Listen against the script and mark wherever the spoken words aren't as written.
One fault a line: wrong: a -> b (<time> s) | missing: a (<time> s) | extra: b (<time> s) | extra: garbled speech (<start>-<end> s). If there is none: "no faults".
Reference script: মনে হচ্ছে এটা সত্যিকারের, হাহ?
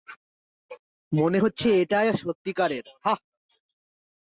no faults